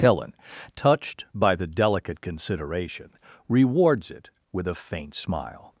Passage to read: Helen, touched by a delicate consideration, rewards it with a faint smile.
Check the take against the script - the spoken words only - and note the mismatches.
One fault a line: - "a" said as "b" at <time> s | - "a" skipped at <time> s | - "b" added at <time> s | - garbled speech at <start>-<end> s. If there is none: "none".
- "a" said as "the" at 1.6 s